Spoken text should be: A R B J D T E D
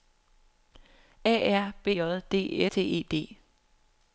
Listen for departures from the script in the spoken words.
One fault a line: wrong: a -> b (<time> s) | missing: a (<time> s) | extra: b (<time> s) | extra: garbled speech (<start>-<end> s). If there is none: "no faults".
no faults